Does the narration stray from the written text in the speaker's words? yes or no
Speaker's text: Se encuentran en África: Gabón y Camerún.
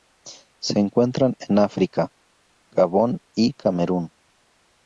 no